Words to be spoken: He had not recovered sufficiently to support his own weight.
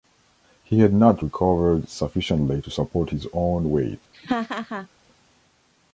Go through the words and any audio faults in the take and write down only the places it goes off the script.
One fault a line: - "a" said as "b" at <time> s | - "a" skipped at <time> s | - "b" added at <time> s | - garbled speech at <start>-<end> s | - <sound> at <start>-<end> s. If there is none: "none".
- laugh at 4.1-4.9 s